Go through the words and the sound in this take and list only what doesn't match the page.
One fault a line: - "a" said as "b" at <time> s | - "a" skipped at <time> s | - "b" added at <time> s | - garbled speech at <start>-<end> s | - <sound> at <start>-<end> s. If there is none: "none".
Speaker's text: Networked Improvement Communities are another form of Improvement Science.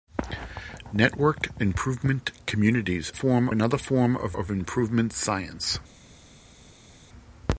- "are" said as "form" at 3.1 s
- "of" added at 4.3 s